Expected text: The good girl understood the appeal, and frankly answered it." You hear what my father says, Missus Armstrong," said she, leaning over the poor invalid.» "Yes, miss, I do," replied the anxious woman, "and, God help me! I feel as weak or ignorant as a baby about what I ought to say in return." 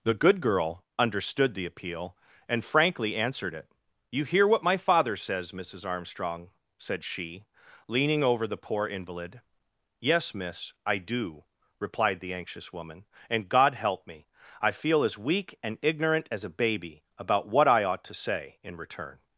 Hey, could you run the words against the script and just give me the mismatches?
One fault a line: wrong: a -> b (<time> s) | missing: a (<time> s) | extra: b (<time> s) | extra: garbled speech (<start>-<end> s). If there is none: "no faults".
wrong: or -> and (15.6 s)